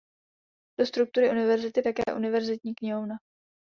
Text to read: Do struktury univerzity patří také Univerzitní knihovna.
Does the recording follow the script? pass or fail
fail